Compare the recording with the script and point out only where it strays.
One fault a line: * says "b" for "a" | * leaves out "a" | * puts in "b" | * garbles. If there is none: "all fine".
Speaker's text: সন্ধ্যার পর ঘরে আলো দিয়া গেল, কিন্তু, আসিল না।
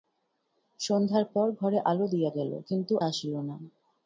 all fine